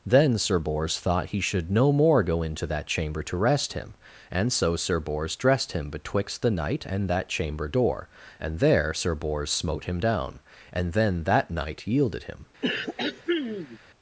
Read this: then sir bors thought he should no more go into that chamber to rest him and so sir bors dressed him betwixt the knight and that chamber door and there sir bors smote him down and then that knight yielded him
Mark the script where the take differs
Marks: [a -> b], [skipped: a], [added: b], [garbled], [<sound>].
then sir bors thought he should no more go into that chamber to rest him and so sir bors dressed him betwixt the knight and that chamber door and there sir bors smote him down and then that knight yielded him [throat clearing]